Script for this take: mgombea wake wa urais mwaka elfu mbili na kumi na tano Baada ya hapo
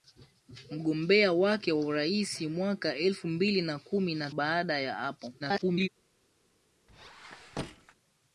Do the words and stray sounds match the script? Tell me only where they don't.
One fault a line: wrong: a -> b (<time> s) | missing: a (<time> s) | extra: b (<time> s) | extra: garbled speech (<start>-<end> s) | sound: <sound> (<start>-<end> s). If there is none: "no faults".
missing: tano (4.3 s)
extra: garbled speech (5.4-5.9 s)
sound: squeak (6.9-7.9 s)